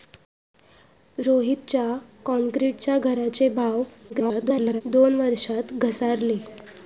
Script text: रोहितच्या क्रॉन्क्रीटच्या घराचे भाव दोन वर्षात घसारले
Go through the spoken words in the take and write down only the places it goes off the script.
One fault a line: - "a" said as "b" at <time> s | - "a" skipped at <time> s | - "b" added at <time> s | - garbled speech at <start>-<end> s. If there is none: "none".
- garbled speech at 4.1-4.8 s